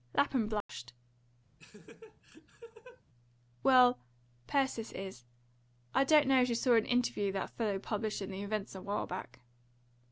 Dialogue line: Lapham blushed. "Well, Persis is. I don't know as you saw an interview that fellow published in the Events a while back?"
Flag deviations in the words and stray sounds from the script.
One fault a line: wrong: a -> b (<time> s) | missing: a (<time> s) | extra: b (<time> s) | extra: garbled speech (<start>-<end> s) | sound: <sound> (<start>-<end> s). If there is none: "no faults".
sound: dropout (0.6-0.7 s)
sound: laugh (1.6-3.0 s)